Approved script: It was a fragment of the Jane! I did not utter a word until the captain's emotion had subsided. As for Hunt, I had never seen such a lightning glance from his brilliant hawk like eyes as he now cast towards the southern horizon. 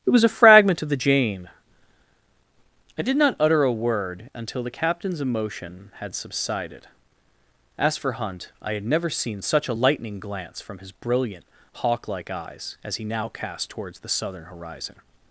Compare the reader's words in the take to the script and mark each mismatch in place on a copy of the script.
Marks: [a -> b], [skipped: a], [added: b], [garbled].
It was a fragment of the Jane! I did not utter a word until the captain's emotion had subsided. As for Hunt, I had never seen such a lightning glance from his brilliant hawk like eyes as he now cast towards the southern horizon.